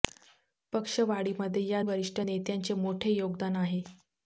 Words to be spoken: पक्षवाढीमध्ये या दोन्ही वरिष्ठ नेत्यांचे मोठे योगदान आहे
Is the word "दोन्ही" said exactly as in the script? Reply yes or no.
no